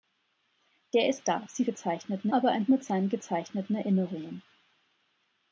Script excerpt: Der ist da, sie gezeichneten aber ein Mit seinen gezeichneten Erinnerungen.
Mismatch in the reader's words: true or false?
false